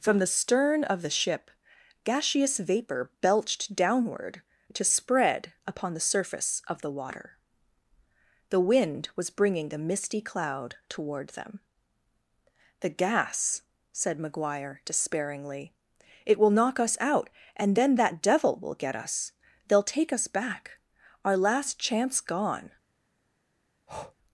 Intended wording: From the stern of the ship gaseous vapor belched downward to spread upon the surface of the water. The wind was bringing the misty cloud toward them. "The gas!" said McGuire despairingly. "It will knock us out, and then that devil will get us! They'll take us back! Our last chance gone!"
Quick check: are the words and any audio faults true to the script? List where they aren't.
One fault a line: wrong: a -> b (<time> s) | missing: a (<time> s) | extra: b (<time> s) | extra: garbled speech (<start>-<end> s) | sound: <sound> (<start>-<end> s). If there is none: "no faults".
sound: breath (23.9-24.1 s)